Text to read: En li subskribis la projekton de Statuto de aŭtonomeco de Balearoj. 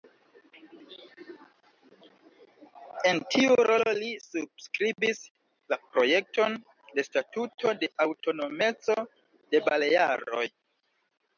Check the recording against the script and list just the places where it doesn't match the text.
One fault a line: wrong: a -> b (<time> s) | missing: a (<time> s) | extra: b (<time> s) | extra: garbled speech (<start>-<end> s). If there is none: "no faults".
extra: tiu rolo (3.3 s)